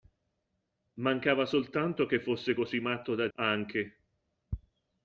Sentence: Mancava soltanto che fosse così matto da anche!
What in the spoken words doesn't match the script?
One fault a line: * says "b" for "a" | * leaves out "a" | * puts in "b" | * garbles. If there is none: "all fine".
all fine